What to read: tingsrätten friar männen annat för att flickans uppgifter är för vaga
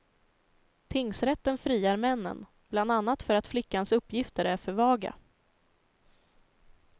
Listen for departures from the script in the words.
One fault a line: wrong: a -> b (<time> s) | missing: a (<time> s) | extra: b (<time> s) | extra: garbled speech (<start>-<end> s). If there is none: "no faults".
extra: bland (2.7 s)